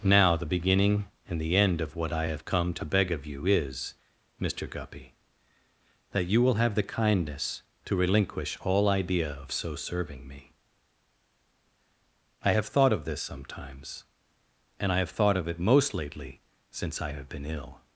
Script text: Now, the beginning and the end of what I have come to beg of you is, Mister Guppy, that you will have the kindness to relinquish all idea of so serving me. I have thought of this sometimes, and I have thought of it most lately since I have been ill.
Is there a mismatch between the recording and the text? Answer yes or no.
no